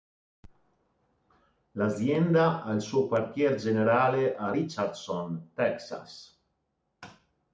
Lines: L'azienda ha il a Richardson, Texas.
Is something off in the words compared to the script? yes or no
yes